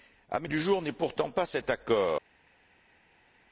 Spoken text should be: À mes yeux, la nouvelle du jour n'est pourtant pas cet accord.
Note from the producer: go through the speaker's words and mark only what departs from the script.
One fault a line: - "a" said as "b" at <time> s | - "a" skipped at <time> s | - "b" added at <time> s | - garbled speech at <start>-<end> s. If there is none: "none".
- "yeux la nouvelle" skipped at 0.5 s